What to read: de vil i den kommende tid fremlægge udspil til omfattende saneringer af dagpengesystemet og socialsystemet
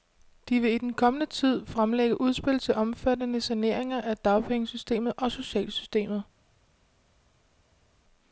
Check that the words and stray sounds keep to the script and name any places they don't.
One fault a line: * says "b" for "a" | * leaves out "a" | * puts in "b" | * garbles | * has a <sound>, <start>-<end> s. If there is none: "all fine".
all fine